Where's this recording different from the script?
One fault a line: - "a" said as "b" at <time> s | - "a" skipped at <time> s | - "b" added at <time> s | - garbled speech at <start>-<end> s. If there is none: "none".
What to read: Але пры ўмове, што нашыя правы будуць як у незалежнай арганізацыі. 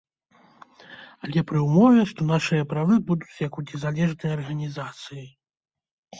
none